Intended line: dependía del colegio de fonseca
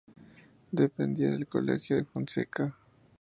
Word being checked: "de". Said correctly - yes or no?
yes